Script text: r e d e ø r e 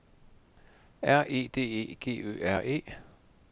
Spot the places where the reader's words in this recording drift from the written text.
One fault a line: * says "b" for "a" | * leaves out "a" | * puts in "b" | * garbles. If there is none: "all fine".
* puts in "g"